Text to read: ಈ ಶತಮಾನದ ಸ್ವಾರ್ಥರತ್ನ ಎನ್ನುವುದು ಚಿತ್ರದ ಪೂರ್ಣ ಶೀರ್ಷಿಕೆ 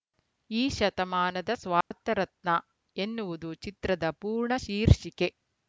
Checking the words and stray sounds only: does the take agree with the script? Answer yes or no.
no